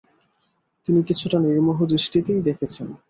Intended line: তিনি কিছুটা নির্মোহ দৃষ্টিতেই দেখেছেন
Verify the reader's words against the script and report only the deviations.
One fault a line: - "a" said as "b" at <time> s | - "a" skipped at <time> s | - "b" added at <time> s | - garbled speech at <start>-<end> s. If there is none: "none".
none